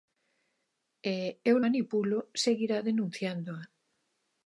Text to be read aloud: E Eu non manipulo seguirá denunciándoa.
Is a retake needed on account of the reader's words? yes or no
yes